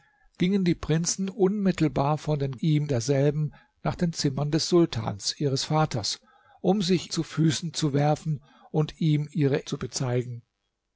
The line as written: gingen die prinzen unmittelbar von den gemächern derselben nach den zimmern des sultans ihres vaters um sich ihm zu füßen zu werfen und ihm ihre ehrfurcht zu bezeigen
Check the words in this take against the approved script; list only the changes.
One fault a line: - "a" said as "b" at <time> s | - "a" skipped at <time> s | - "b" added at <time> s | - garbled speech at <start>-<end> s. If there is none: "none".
- "gemächern" said as "ihm" at 2.6 s
- "ihm" skipped at 7.1 s
- "ehrfurcht" skipped at 9.6 s